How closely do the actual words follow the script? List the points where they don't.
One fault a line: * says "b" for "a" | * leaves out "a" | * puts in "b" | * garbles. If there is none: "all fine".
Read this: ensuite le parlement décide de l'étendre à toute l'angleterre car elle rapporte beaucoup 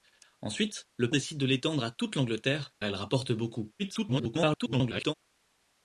* leaves out "parlement"
* leaves out "car"
* garbles